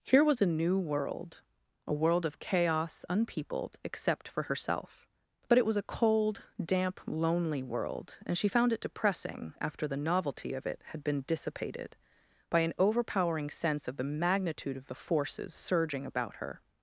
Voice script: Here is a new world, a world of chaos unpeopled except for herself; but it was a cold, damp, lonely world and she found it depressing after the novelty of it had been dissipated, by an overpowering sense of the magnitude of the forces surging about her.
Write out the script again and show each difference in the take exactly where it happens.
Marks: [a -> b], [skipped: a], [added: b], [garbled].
Here [is -> was] a new world, a world of chaos unpeopled except for herself; but it was a cold, damp, lonely world and she found it depressing after the novelty of it had been dissipated, by an overpowering sense of the magnitude of the forces surging about her.